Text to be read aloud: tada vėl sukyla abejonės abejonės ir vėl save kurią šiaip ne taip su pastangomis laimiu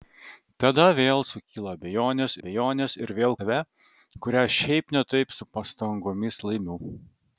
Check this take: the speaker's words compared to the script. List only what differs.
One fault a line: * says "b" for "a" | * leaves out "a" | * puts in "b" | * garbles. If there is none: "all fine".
all fine